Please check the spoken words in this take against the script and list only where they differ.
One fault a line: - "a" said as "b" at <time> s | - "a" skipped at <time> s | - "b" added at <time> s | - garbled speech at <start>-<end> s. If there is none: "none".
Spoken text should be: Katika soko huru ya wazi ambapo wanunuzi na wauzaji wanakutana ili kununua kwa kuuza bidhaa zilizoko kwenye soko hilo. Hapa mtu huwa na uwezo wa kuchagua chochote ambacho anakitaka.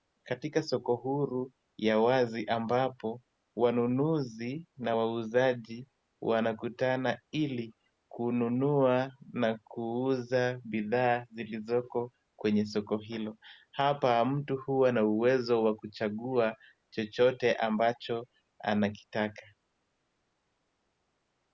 - "kwa" said as "na" at 9.3 s